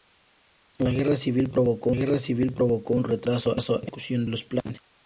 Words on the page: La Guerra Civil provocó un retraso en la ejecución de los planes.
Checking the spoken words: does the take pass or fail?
fail